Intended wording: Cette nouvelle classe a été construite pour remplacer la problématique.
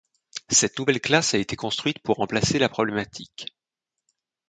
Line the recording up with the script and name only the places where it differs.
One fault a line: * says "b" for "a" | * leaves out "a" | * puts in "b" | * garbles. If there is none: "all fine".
all fine